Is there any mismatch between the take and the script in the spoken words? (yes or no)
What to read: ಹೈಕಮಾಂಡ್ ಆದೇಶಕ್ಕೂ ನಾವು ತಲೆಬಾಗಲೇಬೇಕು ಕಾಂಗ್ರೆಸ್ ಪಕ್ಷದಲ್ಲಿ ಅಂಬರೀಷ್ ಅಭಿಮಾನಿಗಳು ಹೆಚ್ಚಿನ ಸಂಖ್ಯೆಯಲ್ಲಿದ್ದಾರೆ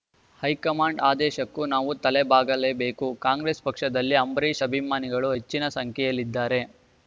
no